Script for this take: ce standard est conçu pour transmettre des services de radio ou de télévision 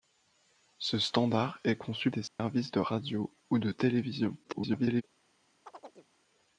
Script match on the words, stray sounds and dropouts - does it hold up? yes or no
no